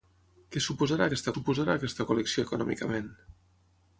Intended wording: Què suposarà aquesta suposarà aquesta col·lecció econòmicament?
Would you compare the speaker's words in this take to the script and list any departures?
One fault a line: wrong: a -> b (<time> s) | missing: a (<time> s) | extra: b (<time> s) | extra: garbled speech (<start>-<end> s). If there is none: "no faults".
no faults